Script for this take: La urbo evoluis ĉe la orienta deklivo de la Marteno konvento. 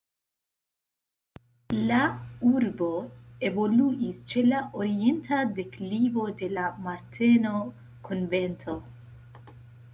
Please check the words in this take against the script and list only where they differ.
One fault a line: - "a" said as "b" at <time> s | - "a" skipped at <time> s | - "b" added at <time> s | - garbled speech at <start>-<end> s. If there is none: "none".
none